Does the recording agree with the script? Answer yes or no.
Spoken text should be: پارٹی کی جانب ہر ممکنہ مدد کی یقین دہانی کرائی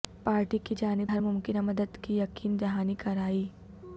yes